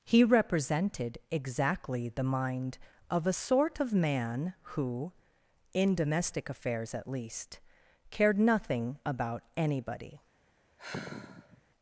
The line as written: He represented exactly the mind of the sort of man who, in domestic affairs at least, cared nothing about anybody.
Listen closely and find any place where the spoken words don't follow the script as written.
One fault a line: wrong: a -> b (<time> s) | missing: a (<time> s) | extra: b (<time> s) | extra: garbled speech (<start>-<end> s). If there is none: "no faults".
wrong: the -> a (3.3 s)